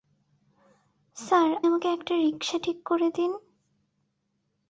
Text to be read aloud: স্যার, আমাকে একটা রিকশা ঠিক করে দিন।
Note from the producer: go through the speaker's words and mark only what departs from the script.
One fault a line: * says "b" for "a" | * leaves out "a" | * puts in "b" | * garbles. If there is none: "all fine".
all fine